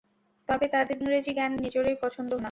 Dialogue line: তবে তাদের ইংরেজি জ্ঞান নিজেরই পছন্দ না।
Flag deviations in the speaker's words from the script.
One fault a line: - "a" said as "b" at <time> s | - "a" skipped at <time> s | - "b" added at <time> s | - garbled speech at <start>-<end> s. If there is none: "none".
none